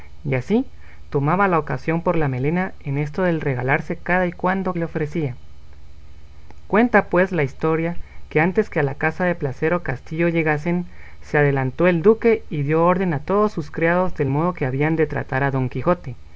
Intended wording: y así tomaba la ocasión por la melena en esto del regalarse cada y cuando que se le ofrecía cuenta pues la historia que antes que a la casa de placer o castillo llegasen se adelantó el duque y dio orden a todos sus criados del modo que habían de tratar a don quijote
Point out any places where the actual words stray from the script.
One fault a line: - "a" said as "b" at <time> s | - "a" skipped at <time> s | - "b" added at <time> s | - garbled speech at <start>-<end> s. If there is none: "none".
- "que se" skipped at 4.8 s